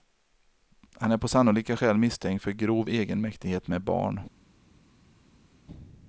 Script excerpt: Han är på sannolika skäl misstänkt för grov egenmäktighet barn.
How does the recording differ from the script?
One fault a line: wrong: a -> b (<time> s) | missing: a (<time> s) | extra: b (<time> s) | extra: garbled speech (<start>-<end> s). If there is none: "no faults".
extra: med (3.7 s)